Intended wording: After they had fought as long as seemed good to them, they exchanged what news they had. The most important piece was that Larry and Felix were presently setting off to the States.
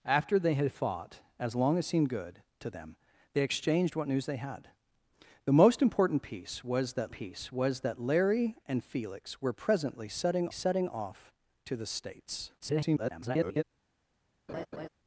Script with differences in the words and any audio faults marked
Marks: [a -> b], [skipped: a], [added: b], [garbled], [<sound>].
After they had fought as long as seemed good to them, they exchanged what news they had. The most important piece was that [added: piece was that] Larry and Felix were presently setting [added: setting] off to the States. [garbled] [laugh]